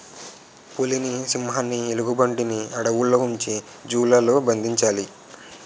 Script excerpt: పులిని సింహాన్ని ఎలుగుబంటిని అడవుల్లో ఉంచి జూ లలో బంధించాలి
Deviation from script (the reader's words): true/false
false